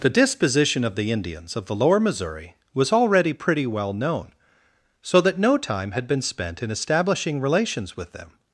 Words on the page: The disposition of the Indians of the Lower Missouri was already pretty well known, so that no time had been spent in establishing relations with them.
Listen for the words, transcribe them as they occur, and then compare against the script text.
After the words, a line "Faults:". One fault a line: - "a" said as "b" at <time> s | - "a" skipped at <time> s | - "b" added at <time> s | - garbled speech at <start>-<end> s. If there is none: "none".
The disposition of the Indians of the Lower Missouri was already pretty well known, so that no time had been spent in establishing relations with them.
Faults:
none